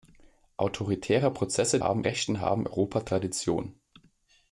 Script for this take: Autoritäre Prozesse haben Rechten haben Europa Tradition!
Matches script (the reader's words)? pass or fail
pass